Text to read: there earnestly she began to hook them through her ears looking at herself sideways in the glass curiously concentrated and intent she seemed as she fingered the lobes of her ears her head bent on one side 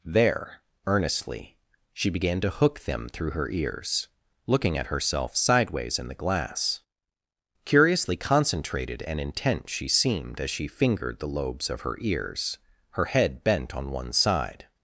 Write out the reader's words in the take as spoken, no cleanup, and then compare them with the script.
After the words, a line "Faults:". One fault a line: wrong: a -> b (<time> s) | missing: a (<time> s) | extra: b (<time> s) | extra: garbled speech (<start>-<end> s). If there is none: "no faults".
there earnestly she began to hook them through her ears looking at herself sideways in the glass curiously concentrated and intent she seemed as she fingered the lobes of her ears her head bent on one side
Faults:
no faults